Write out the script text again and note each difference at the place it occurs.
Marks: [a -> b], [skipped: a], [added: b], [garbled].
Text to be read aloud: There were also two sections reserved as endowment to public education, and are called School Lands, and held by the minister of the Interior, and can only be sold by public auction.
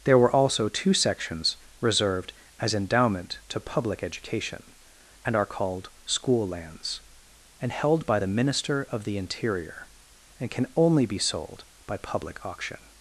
There were also two sections reserved as endowment to public education, and are called School Lands, and held by the minister of the Interior, and can only be sold by public auction.